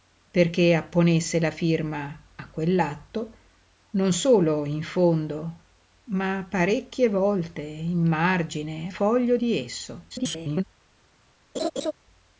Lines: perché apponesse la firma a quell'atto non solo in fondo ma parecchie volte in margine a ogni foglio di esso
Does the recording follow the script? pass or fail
fail